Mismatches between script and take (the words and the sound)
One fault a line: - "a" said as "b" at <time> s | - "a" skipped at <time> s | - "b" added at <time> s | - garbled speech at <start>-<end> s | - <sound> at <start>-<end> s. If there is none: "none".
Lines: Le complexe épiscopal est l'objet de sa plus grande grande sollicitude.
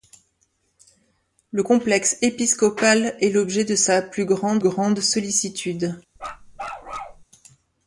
- bark at 6.2-7.2 s